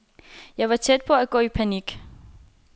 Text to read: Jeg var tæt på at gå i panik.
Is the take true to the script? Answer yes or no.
yes